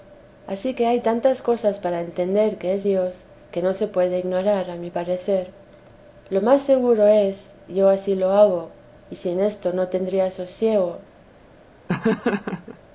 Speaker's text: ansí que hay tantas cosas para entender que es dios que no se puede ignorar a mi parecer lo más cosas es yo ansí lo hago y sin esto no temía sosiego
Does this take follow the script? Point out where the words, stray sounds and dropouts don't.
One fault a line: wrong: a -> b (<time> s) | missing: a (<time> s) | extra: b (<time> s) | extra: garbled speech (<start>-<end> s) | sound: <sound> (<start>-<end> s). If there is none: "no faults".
wrong: cosas -> seguro (6.6 s)
sound: laugh (11.9-12.8 s)